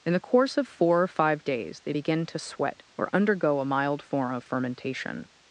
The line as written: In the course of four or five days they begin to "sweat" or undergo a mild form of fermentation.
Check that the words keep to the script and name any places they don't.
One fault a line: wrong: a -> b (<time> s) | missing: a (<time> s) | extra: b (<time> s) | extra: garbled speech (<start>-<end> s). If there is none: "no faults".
no faults